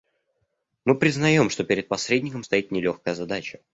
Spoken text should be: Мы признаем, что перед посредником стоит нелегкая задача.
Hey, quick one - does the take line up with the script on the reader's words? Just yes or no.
yes